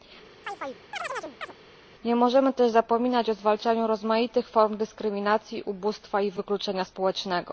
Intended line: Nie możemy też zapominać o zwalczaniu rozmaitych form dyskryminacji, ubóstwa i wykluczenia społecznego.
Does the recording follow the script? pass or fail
pass